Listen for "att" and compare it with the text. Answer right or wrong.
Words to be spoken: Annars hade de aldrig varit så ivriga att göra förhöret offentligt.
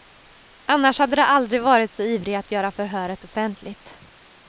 right